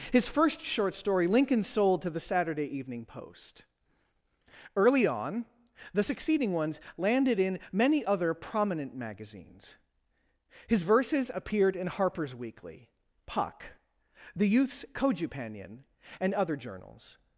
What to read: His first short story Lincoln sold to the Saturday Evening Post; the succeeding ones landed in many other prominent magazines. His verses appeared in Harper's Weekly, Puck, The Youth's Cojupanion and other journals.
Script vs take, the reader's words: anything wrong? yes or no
yes